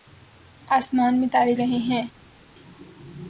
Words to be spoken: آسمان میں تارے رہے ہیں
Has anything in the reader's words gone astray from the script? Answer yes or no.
no